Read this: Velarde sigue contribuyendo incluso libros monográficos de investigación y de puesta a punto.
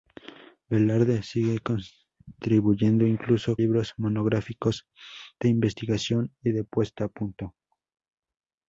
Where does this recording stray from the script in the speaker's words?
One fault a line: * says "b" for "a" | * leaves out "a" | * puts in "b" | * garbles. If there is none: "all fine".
all fine